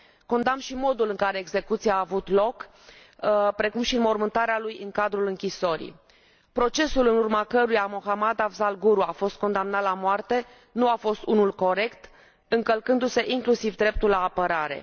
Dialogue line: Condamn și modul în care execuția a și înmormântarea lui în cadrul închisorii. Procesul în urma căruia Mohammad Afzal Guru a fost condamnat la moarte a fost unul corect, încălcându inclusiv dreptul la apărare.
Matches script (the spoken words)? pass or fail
fail